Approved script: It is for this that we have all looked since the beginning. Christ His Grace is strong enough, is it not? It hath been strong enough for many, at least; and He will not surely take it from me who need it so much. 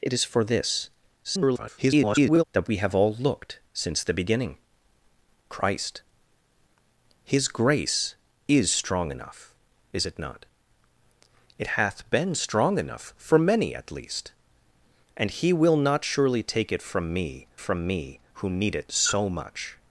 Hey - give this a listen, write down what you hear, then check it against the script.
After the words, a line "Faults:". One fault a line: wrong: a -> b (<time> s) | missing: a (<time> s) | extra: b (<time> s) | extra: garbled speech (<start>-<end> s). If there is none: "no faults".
It is for this [garbled] that we have all looked since the beginning. Christ His Grace is strong enough, is it not? It hath been strong enough for many, at least; and He will not surely take it from me from me who need it so much.
Faults:
extra: garbled speech (1.2-2.4 s)
extra: from me (17.6 s)